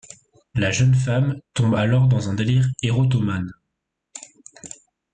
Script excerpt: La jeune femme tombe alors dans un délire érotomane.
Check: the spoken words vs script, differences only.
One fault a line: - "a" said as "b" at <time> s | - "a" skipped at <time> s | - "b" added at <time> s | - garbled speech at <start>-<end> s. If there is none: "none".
none